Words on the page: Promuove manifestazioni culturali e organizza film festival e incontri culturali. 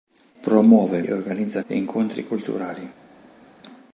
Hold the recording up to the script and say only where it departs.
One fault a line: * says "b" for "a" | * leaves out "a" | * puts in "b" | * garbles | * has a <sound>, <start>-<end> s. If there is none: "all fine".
* leaves out "manifestazioni culturali"
* leaves out "film festival"